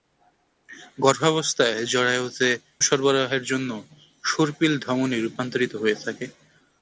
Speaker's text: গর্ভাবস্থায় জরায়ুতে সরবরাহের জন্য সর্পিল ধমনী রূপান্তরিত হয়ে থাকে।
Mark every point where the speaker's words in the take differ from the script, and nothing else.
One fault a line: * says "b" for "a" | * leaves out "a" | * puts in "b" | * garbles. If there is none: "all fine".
all fine